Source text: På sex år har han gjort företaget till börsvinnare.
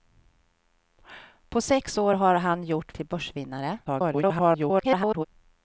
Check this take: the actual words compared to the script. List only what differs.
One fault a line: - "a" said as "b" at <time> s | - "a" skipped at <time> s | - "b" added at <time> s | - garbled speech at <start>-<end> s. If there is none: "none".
- "företaget" skipped at 2.9 s
- garbled speech at 3.9-5.3 s